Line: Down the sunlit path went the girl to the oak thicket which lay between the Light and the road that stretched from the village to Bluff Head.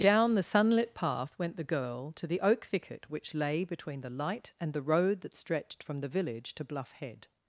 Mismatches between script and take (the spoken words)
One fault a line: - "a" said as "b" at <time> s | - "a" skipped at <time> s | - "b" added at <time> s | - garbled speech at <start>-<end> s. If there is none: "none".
none